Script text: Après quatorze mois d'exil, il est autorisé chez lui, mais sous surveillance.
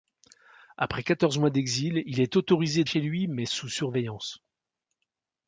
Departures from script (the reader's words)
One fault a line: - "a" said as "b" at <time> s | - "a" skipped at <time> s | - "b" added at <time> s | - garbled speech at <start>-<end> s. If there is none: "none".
none